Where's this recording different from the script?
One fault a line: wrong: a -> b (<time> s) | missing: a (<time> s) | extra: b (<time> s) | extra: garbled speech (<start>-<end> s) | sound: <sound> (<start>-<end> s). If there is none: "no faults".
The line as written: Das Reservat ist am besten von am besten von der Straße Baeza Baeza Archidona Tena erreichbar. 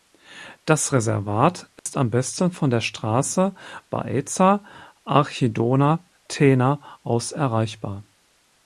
sound: dropout (1.8-1.9 s)
missing: am besten von (2.7 s)
missing: Baeza (4.6 s)
extra: aus (7.0 s)